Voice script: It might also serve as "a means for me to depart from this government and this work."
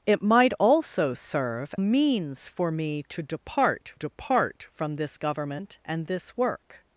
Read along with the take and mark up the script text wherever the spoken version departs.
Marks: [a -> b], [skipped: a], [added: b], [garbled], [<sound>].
It might also serve [skipped: as "a] means for me to depart [added: depart] from this government and this work."